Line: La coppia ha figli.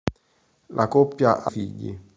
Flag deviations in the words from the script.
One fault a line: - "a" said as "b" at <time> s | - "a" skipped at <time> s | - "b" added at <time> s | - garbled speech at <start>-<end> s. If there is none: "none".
none